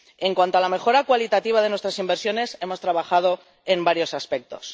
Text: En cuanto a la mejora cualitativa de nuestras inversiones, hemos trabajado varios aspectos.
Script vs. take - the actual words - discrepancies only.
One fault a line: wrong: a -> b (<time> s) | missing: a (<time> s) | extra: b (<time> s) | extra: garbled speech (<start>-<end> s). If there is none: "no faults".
extra: en (3.6 s)